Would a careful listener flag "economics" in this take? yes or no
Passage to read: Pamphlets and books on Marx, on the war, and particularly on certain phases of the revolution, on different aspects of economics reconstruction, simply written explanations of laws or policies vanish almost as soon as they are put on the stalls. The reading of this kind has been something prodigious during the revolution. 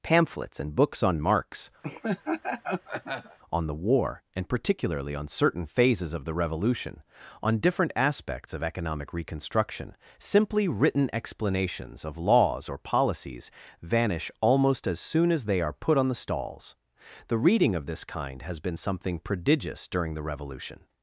yes